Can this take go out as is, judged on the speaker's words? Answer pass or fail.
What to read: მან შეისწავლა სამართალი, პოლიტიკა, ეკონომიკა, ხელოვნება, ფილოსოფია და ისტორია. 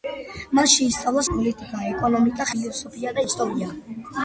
fail